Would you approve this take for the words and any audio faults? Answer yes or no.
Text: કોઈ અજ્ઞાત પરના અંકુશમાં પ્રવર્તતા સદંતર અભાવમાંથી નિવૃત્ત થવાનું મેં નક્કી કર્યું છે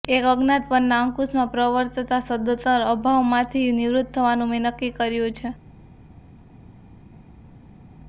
no